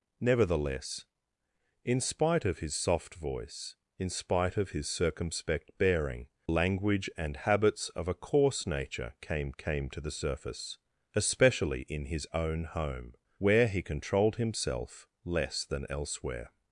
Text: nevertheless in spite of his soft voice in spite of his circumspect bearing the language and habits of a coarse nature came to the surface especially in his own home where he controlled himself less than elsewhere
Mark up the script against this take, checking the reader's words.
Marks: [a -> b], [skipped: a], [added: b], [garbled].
nevertheless in spite of his soft voice in spite of his circumspect bearing [skipped: the] language and habits of a coarse nature came [added: came] to the surface especially in his own home where he controlled himself less than elsewhere